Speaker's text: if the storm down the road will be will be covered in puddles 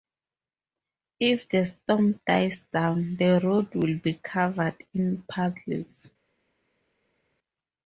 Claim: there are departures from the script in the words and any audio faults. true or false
true